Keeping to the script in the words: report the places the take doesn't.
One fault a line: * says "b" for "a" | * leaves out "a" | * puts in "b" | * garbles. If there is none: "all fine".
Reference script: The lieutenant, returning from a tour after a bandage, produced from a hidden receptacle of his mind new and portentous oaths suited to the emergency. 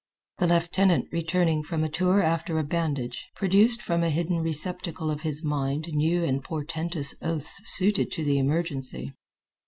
all fine